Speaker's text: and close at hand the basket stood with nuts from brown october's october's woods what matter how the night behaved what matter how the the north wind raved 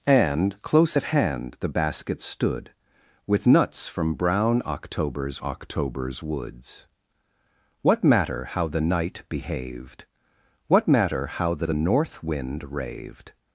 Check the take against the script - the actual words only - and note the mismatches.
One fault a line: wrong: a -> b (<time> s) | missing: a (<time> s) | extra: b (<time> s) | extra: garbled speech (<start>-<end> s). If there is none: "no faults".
no faults